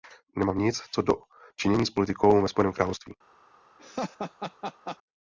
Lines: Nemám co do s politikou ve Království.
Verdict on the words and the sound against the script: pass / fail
fail